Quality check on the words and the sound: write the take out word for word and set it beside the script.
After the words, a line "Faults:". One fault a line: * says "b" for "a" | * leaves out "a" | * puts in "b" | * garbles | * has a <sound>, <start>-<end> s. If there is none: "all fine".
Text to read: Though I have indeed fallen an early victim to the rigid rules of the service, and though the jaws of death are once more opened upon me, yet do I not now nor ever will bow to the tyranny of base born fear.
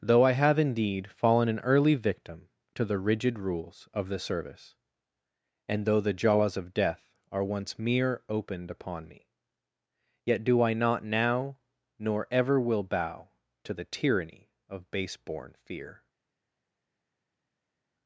Though I have indeed fallen an early victim to the rigid rules of the service, and though the jaws of death are once mere opened upon me, yet do I not now nor ever will bow to the tyranny of base born fear.
Faults:
* says "mere" for "more"